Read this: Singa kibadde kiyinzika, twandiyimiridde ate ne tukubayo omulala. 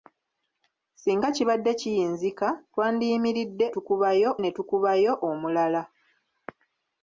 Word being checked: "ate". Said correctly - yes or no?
no